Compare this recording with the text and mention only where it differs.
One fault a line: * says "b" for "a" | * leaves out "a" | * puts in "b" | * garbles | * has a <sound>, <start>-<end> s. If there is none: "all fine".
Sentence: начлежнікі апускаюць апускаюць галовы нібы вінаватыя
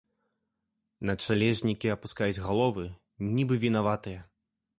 * leaves out "апускаюць"